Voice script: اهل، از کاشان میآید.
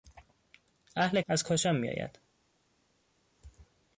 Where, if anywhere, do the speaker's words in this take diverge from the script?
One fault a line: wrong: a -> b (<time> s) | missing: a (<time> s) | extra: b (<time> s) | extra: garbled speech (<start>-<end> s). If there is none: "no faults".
no faults